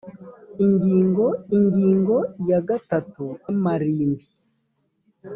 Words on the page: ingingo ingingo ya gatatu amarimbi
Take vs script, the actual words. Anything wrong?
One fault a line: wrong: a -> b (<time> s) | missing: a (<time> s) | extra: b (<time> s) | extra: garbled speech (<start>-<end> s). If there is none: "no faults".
no faults